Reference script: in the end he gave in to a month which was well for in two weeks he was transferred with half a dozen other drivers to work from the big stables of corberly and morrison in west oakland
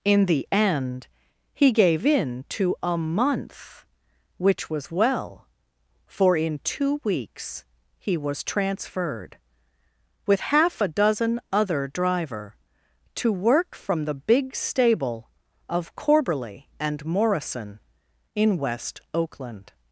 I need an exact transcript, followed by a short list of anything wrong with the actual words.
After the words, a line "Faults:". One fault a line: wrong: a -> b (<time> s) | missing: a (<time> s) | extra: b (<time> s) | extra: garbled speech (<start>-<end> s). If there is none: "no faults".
in the end he gave in to a month which was well for in two weeks he was transferred with half a dozen other driver to work from the big stable of corberly and morrison in west oakland
Faults:
wrong: drivers -> driver (11.9 s)
wrong: stables -> stable (14.5 s)